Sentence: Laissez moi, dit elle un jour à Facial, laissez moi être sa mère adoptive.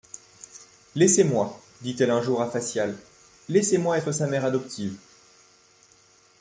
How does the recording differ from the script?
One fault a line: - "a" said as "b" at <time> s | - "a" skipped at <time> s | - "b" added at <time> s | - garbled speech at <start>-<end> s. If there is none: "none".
none